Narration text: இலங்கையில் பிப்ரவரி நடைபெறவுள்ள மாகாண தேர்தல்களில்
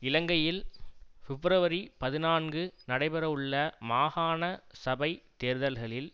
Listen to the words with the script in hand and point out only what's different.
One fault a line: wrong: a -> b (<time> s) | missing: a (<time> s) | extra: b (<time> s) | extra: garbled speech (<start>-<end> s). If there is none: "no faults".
extra: பதினான்கு (2.0 s)
extra: சபைத் (4.8 s)